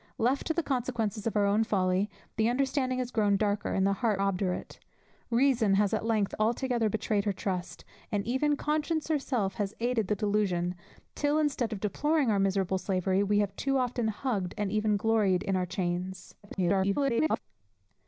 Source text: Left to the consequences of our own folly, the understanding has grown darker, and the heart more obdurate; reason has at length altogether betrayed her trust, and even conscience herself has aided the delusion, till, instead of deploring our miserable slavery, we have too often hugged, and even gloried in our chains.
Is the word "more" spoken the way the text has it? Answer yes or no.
no